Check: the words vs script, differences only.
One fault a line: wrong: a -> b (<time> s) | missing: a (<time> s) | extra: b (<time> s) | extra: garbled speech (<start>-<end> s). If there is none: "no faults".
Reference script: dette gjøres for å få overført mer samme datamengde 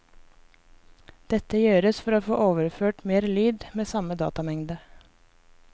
extra: lyd med (3.4 s)